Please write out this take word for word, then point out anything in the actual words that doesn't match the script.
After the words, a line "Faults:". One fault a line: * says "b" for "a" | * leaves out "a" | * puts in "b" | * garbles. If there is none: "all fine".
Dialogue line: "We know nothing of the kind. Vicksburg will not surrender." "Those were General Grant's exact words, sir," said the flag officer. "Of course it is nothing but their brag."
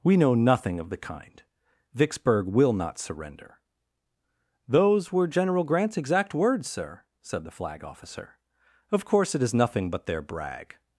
"We know nothing of the kind. Vicksburg will not surrender." "Those were General Grant's exact words, sir," said the flag officer. "Of course it is nothing but their brag."
Faults:
all fine